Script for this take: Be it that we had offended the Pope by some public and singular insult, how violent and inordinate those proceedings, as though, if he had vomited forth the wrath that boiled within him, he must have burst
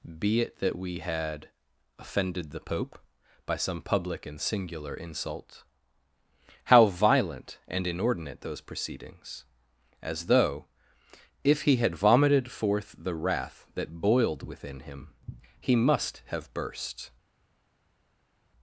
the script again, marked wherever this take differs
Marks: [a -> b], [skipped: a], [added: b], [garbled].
Be it that we had offended the Pope by some public and singular insult, how violent and inordinate those proceedings, as though, if he had vomited forth the wrath that boiled within him, he must have burst